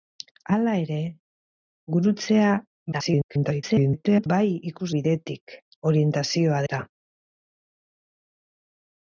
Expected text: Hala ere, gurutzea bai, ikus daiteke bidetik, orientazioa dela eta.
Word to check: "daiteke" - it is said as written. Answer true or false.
false